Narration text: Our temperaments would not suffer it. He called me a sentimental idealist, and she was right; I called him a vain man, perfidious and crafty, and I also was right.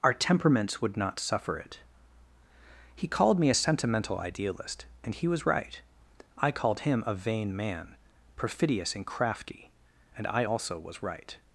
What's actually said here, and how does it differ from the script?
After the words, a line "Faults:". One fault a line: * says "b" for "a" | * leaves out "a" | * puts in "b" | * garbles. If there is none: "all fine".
Our temperaments would not suffer it. He called me a sentimental idealist, and he was right; I called him a vain man, perfidious and crafty, and I also was right.
Faults:
* says "he" for "she"